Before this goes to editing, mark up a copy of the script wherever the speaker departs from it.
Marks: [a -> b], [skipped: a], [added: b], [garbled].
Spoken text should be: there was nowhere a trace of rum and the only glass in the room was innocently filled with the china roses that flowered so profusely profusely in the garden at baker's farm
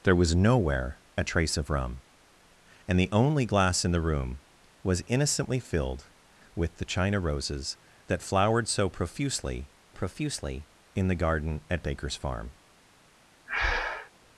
there was nowhere a trace of rum and the only glass in the room was innocently filled with the china roses that flowered so profusely profusely in the garden at baker's farm